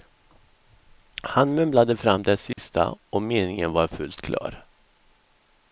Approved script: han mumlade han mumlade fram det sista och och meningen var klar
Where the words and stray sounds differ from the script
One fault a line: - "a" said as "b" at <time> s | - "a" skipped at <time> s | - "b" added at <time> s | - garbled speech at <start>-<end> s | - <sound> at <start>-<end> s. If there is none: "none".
- "han mumlade" skipped at 2.0 s
- dropout at 2.5-2.6 s
- "och" skipped at 3.2 s
- "fullt" added at 3.9 s